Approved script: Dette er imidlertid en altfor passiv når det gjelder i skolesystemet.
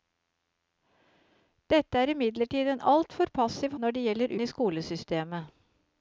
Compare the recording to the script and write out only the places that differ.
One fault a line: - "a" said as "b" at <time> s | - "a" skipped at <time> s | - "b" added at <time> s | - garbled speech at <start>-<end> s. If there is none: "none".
none